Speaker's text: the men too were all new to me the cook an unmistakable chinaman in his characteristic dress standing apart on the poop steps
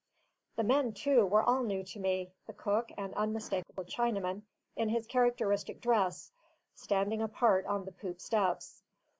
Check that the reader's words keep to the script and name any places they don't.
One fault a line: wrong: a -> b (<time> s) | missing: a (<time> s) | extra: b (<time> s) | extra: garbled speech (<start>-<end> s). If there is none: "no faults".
no faults